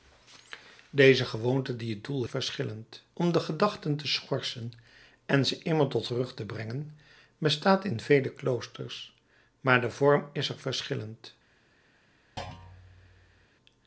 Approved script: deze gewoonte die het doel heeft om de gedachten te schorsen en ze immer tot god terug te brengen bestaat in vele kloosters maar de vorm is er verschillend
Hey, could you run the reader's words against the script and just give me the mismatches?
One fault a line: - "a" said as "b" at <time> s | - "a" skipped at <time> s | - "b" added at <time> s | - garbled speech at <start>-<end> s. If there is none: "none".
- "heeft" said as "verschillend" at 2.3 s
- "god" skipped at 6.1 s